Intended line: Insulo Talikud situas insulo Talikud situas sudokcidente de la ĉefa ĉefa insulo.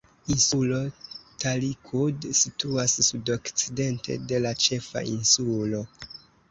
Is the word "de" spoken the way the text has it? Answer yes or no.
yes